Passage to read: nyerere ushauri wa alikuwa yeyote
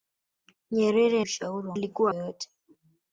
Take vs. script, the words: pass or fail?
pass